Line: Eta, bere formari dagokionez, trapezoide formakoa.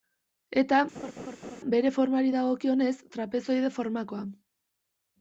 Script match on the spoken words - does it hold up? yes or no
yes